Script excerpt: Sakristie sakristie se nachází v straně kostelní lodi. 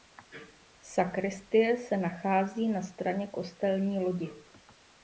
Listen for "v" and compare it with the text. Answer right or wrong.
wrong